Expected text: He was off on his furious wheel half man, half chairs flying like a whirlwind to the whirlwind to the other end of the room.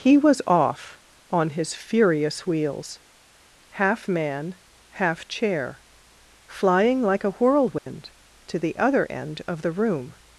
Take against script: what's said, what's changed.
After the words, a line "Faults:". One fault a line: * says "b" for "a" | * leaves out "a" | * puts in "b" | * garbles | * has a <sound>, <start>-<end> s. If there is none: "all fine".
He was off on his furious wheels half man, half chair flying like a whirlwind to the other end of the room.
Faults:
* says "wheels" for "wheel"
* says "chair" for "chairs"
* has a dropout, 7.8-7.9 s
* leaves out "whirlwind to the"